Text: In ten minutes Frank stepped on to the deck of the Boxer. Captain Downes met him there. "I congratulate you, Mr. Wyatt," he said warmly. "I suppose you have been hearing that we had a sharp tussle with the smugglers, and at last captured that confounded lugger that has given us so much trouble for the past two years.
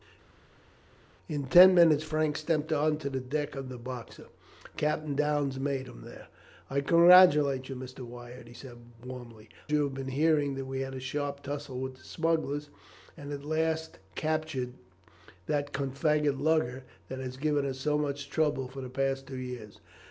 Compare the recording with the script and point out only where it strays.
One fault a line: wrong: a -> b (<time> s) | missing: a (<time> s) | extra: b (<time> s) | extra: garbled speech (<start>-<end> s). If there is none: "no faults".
missing: I suppose (9.5 s)